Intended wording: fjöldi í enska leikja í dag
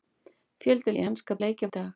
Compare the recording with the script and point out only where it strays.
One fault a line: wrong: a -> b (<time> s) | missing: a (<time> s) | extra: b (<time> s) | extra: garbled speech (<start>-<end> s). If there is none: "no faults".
no faults